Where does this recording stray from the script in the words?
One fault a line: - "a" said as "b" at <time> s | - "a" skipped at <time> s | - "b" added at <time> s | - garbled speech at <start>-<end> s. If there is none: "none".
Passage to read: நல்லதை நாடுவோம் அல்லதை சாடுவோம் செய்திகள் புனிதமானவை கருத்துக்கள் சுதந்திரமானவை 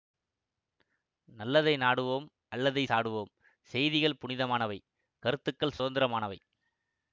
none